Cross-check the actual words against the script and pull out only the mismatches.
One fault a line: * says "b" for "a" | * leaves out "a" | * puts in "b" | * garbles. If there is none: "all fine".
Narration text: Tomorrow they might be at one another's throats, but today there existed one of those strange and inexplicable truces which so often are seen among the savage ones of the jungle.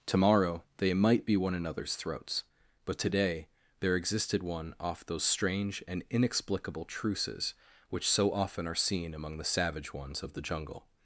* leaves out "at"
* says "off" for "of"